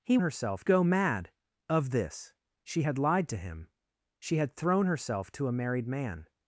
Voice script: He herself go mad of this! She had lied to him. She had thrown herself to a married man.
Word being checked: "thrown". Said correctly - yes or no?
yes